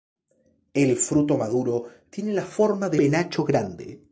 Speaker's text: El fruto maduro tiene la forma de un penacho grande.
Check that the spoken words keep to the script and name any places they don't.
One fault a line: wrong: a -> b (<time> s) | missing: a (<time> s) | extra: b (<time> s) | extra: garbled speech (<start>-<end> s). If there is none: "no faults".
missing: un (3.0 s)